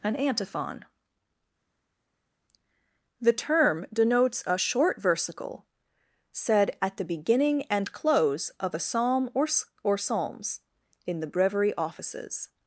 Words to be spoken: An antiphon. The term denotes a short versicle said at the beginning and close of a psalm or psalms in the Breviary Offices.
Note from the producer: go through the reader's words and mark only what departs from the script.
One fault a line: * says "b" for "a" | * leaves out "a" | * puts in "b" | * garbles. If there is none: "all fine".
* puts in "or"